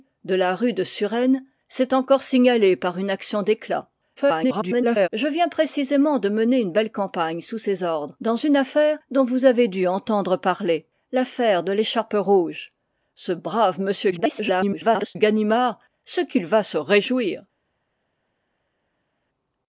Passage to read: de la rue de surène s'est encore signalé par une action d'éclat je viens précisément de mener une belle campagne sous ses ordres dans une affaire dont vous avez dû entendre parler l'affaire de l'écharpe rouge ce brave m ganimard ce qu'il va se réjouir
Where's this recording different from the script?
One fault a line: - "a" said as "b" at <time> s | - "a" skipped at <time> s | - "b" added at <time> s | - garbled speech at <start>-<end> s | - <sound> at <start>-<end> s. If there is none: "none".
- garbled speech at 4.2-5.1 s
- garbled speech at 14.1-15.2 s